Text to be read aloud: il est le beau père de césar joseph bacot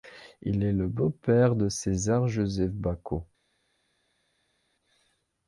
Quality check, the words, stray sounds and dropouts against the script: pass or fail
pass